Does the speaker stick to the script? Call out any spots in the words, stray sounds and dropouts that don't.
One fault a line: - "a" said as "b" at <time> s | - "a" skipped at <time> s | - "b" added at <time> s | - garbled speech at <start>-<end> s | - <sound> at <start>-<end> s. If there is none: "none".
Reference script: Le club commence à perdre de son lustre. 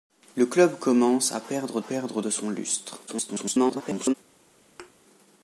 - "perdre" added at 1.8 s
- garbled speech at 3.1-4.1 s
- thud at 4.8-4.9 s